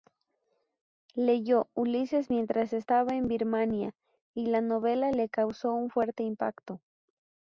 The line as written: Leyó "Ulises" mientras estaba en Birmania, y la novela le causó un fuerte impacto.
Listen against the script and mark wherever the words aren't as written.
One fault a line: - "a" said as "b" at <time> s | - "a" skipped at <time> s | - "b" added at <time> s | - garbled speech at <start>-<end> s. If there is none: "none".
none